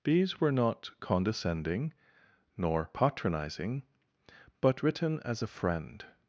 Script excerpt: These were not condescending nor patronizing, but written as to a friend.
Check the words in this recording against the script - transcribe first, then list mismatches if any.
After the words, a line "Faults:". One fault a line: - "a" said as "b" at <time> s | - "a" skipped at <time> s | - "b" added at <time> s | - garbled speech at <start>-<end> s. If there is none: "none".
These were not condescending nor patronizing, but written as a friend.
Faults:
- "to" skipped at 5.4 s